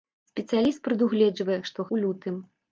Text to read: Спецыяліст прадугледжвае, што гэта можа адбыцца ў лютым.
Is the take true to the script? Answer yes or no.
no